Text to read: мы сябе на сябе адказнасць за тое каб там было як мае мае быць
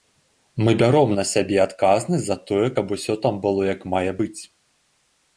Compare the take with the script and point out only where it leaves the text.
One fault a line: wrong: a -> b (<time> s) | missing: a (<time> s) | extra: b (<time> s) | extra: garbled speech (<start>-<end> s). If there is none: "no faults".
wrong: сябе -> бяром (0.8 s)
extra: усё (3.0 s)
missing: мае (4.1 s)